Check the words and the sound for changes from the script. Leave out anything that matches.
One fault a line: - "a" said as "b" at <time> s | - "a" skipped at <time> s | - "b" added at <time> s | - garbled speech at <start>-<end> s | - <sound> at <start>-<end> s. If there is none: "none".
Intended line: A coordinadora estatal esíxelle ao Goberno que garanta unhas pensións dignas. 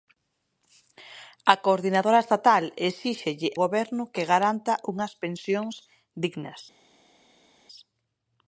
- "ao" skipped at 3.5 s